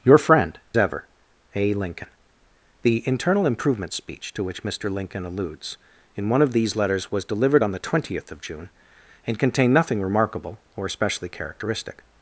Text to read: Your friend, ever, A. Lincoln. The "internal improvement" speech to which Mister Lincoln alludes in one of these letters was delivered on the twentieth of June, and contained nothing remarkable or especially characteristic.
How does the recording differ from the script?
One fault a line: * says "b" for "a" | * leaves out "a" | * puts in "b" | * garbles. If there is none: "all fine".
all fine